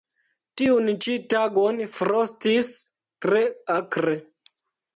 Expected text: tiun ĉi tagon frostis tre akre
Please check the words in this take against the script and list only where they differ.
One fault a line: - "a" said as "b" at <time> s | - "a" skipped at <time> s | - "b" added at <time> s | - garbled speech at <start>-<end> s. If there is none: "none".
none